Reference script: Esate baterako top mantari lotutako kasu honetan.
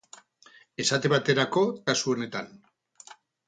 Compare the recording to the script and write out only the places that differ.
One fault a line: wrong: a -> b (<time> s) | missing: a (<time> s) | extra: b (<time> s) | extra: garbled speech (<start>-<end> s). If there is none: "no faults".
missing: top mantari lotutako (1.6 s)